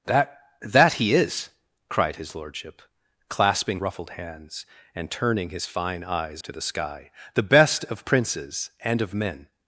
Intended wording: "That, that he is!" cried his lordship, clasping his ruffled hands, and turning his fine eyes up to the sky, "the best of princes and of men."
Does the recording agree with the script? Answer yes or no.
no